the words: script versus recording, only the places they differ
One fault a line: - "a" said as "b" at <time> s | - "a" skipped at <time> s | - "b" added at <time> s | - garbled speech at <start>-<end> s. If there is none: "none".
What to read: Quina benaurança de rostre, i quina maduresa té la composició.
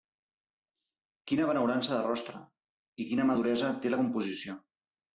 none